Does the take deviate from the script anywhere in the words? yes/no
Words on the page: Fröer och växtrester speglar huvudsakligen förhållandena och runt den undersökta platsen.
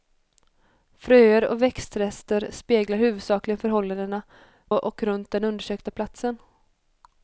no